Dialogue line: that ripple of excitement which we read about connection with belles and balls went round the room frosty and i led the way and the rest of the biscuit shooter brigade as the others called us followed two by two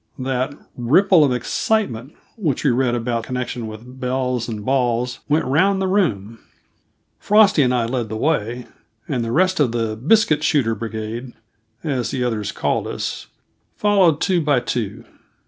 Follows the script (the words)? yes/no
yes